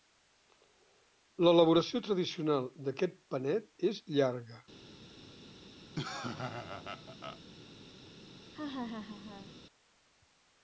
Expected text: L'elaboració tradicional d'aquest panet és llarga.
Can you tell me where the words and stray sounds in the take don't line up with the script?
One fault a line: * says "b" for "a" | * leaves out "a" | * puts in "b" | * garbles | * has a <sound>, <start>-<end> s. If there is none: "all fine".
* has a laugh, 6.0-7.4 s
* has a laugh, 8.5-9.5 s